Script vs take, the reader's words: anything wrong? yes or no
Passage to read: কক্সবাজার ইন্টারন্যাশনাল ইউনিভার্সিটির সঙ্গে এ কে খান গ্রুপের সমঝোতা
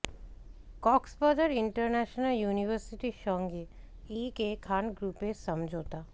no